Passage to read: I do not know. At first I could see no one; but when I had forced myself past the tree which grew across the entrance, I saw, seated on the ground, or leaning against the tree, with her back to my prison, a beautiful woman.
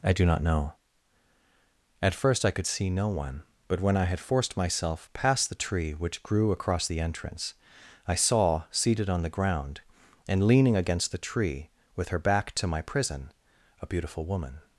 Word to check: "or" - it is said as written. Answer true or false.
false